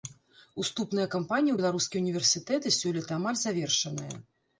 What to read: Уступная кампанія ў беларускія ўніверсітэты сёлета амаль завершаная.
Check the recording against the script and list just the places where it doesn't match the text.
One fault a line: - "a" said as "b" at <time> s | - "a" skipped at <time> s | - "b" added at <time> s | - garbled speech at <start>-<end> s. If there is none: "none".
none